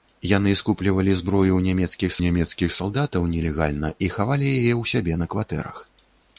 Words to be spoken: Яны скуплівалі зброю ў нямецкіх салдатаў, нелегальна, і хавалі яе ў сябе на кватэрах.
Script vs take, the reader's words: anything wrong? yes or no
yes